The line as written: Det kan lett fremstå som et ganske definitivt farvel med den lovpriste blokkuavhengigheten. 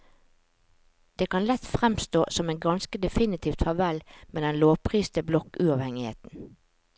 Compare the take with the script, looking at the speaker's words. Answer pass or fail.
pass